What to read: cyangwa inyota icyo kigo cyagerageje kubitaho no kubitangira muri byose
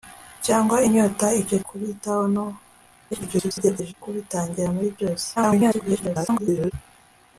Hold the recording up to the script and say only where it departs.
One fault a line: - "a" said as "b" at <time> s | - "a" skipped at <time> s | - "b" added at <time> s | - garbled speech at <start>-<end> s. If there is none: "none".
- "kigo cyagerageje" skipped at 1.6 s
- garbled speech at 3.1-3.9 s
- garbled speech at 5.4-6.7 s